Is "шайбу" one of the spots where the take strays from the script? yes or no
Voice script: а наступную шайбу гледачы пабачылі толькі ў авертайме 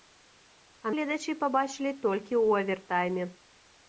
yes